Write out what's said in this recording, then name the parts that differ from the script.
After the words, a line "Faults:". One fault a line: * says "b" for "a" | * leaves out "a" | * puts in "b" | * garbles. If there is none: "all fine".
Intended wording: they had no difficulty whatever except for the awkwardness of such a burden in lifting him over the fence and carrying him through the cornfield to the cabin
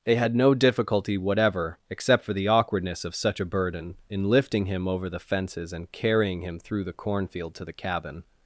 they had no difficulty whatever except for the awkwardness of such a burden in lifting him over the fences and carrying him through the cornfield to the cabin
Faults:
* says "fences" for "fence"